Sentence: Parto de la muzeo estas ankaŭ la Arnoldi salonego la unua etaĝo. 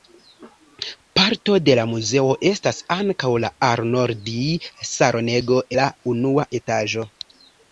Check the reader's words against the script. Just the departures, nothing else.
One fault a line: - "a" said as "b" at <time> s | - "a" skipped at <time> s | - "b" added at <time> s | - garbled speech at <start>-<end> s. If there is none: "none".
none